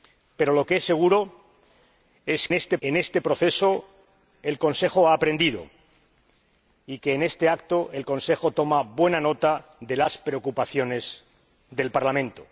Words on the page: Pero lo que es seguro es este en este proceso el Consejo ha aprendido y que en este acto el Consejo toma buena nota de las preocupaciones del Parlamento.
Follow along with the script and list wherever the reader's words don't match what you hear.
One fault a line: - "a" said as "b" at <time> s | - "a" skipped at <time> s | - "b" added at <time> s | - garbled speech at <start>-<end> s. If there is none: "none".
none